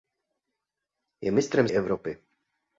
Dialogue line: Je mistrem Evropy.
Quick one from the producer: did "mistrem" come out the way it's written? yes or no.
yes